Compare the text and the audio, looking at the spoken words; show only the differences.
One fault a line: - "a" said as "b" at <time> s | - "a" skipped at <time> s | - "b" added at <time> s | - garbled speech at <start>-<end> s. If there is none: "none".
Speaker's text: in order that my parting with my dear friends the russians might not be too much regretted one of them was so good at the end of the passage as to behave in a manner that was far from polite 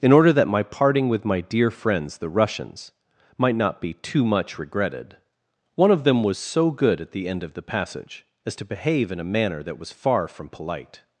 none